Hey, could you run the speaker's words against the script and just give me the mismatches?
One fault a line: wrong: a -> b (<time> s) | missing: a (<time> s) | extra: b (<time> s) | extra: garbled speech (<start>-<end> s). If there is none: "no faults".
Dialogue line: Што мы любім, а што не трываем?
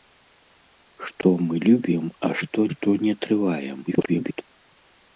extra: што (2.7 s)
extra: garbled speech (3.9-4.4 s)